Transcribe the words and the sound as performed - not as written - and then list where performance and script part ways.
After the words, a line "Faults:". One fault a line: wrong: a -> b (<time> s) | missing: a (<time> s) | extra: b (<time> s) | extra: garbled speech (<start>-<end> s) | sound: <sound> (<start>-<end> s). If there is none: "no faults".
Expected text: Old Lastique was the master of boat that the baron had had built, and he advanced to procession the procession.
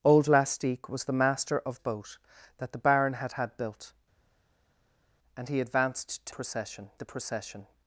Old Lastique was the master of boat that the baron had had built, and he advanced to procession the procession.
Faults:
no faults